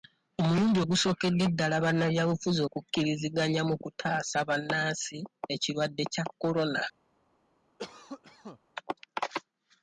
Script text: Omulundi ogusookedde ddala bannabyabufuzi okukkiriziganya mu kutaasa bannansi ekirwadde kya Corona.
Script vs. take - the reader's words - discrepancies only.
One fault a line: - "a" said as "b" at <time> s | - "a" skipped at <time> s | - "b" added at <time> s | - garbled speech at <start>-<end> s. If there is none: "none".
none